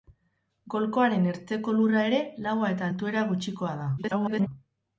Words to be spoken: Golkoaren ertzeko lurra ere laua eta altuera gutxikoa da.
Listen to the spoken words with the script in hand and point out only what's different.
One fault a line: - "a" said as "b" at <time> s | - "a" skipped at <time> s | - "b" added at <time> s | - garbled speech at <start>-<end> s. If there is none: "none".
- garbled speech at 4.0-4.5 s